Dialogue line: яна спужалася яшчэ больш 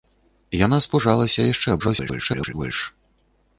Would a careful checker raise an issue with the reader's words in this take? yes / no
yes